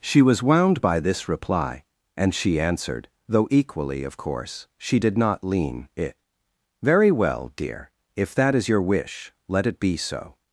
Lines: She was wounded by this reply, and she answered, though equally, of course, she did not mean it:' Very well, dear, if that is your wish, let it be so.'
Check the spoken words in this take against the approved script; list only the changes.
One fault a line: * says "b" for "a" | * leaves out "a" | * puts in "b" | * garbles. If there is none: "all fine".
* says "wound" for "wounded"
* says "lean" for "mean"